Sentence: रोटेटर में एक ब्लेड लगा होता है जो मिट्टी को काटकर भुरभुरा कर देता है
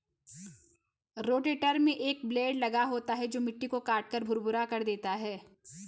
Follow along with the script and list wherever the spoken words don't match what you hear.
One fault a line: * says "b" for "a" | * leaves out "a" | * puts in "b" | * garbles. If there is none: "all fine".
all fine